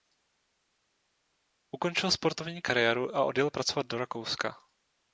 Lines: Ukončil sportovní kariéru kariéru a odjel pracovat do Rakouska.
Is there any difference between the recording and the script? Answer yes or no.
yes